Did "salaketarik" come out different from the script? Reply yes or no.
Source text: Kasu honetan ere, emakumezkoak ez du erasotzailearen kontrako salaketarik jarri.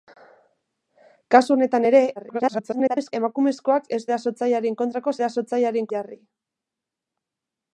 yes